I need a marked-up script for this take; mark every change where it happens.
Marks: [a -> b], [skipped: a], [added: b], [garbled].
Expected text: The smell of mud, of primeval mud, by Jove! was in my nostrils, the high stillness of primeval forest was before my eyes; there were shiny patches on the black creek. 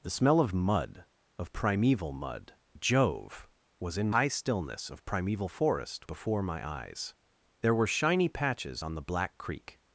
The smell of mud, of primeval mud, [skipped: by] Jove! was in [skipped: my nostrils, the] high stillness of primeval forest [skipped: was] before my eyes; there were shiny patches on the black creek.